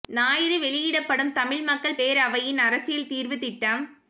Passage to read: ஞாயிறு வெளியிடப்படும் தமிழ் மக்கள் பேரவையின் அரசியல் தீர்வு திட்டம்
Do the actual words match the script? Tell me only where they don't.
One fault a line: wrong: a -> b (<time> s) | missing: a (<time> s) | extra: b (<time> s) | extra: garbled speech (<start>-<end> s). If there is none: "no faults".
no faults